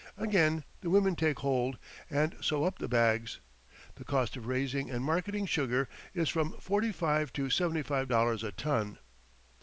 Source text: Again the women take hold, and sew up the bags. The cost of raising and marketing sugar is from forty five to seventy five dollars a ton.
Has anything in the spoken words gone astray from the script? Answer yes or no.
no